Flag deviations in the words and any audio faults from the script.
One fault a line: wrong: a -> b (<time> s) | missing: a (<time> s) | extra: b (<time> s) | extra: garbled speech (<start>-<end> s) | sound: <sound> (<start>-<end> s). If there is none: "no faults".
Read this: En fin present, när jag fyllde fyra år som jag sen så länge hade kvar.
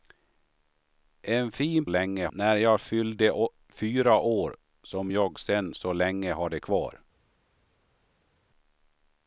wrong: present -> länge (1.9 s)